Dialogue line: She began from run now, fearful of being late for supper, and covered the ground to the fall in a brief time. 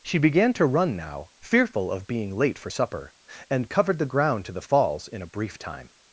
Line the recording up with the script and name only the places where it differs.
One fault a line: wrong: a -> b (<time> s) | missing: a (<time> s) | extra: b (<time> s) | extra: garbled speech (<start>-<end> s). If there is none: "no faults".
wrong: from -> to (0.5 s)
wrong: fall -> falls (4.6 s)